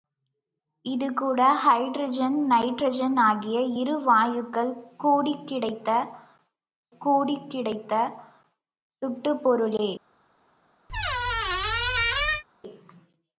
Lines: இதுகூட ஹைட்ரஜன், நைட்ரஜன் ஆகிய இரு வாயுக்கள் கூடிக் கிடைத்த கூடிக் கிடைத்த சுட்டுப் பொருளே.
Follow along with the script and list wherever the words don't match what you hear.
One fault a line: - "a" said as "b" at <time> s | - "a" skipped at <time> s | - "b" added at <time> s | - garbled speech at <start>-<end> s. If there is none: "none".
none